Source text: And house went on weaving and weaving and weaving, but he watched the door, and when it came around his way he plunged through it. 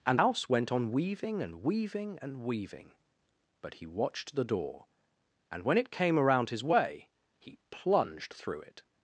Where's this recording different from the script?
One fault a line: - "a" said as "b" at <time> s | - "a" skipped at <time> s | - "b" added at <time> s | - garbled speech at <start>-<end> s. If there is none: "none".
none